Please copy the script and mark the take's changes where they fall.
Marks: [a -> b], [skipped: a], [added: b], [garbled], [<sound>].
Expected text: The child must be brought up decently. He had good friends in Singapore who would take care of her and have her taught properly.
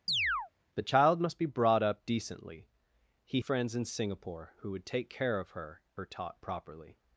[chirp] The child must be brought up decently. He [skipped: had good] friends in Singapore who would take care of her [skipped: and have] her taught properly.